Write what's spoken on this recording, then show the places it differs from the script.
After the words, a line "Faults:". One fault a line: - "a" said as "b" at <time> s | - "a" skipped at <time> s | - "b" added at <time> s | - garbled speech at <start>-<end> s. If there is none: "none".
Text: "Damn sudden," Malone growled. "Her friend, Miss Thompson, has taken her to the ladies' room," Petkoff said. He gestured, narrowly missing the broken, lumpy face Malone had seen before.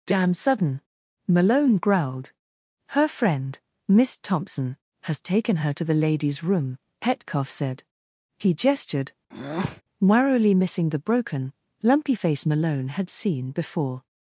"Damn sudden," Malone growled. "Her friend, Miss Thompson, has taken her to the ladies' room," Petkoff said. He gestured, narrowly missing the broken, lumpy face Malone had seen before.
Faults:
none